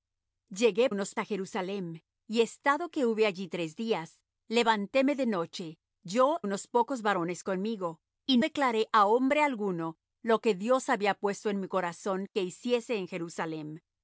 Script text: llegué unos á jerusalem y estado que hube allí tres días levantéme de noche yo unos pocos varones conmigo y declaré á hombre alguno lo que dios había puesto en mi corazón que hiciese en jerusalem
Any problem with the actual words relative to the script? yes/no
no